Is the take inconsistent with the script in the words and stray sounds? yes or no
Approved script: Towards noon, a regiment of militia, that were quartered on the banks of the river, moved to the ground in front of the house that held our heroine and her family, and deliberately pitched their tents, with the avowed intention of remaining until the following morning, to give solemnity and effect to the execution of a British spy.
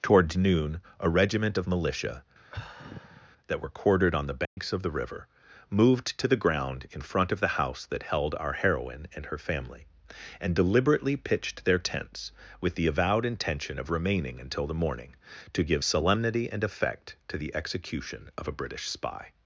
yes